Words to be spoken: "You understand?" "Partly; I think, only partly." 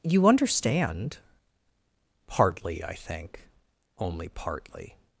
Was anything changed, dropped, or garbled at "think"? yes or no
no